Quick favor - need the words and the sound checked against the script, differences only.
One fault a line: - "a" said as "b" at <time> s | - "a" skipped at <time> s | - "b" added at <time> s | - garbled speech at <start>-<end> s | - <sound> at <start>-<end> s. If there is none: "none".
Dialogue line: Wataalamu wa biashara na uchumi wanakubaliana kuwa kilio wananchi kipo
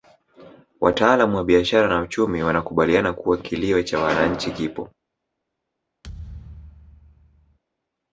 - "cha" added at 3.8 s
- thud at 6.0-7.6 s